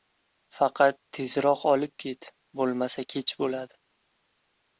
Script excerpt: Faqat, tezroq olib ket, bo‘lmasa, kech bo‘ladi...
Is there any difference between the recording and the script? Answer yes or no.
no